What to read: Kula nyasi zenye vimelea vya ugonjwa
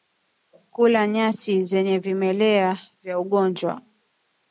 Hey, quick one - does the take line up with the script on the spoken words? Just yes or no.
yes